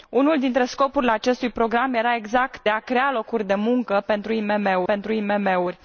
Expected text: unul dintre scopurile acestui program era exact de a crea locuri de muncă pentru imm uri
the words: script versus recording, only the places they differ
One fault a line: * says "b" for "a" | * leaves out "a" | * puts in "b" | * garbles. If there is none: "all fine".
* leaves out "de"
* puts in "pentru imm"